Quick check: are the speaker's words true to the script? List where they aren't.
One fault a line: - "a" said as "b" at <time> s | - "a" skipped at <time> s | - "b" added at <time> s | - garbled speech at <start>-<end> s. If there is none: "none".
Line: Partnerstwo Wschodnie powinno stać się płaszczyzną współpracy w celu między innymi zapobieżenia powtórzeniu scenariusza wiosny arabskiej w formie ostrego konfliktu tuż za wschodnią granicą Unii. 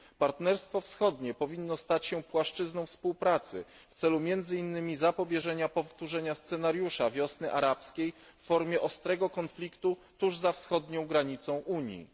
none